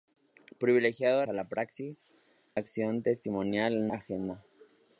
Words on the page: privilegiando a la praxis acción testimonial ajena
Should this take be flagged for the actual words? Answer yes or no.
no